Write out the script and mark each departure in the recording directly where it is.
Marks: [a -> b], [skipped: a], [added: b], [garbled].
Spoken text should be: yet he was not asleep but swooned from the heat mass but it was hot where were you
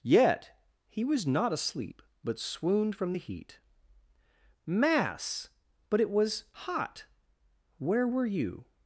yet he was not asleep but swooned from the heat mass but it was hot where were you